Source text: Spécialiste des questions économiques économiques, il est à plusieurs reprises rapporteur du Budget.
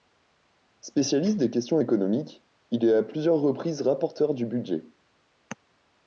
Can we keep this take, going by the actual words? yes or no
no